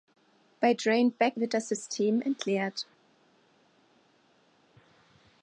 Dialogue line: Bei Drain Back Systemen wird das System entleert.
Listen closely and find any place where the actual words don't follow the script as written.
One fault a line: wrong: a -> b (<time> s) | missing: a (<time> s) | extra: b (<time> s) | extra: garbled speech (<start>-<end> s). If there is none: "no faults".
missing: Systemen (1.4 s)